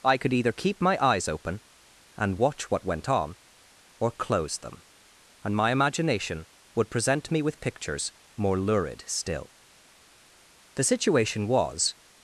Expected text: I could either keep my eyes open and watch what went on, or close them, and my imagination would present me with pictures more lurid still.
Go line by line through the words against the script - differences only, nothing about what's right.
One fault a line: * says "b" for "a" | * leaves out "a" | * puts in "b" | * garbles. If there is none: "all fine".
* puts in "The situation was"